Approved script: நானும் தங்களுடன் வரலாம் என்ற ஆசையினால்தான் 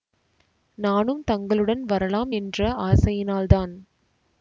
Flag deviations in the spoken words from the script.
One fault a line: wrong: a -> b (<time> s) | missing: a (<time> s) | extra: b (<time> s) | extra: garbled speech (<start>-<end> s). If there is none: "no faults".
no faults